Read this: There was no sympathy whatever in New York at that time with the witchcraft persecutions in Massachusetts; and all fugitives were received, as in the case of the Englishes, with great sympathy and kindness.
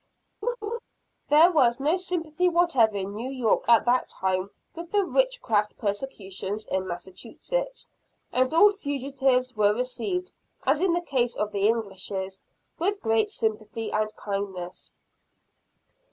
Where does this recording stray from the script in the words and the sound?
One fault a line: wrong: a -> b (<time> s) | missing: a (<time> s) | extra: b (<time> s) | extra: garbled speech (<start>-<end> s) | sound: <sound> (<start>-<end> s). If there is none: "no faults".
sound: laugh (0.4-0.8 s)